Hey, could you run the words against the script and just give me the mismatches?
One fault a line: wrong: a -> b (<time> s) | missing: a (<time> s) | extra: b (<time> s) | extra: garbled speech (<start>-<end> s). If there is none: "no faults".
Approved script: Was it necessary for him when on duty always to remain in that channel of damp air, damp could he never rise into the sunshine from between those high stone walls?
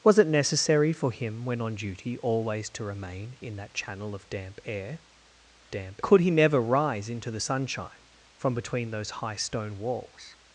no faults